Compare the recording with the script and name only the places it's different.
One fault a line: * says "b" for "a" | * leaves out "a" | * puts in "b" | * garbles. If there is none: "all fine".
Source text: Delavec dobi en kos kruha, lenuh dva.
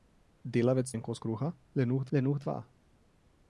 * leaves out "dobi"
* puts in "lenuh"